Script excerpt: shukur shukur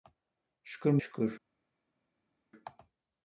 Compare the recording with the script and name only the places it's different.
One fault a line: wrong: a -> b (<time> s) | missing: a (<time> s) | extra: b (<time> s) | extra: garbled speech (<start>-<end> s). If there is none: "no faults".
no faults